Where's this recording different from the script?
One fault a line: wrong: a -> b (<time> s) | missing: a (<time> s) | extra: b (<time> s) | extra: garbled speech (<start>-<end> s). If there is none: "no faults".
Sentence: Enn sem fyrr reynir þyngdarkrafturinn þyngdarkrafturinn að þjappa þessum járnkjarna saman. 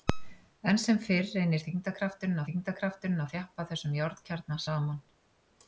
no faults